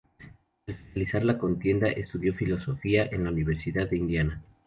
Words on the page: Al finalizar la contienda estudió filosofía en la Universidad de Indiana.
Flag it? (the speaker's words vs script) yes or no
no